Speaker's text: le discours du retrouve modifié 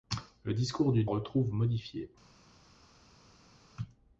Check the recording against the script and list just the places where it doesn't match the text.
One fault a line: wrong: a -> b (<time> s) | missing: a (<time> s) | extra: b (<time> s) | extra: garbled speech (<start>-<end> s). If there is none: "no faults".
no faults